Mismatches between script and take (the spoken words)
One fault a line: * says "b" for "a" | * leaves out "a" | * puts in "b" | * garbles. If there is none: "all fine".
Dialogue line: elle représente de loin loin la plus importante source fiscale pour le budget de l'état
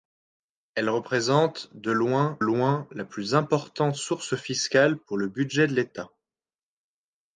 all fine